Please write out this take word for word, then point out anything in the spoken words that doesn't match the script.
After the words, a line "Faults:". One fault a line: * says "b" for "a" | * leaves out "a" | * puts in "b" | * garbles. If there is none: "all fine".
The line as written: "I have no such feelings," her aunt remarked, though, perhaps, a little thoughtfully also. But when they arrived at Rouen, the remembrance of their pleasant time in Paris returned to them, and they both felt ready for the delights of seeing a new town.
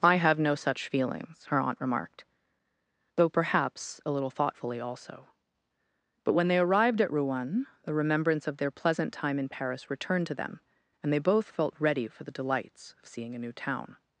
"I have no such feelings," her aunt remarked, though, perhaps, a little thoughtfully also. But when they arrived at Rouen, the remembrance of their pleasant time in Paris returned to them, and they both felt ready for the delights of seeing a new town.
Faults:
all fine